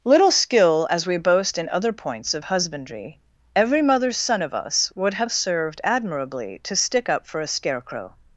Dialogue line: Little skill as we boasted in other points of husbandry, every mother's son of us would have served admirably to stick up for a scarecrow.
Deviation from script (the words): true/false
true